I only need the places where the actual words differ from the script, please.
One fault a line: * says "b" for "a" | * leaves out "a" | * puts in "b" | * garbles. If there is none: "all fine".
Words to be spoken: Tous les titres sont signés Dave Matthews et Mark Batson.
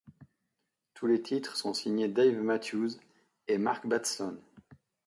all fine